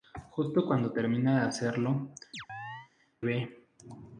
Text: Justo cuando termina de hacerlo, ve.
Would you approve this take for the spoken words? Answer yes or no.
yes